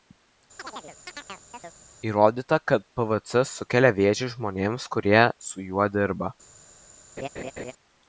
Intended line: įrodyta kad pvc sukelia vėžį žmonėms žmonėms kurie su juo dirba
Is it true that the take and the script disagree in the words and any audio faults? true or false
true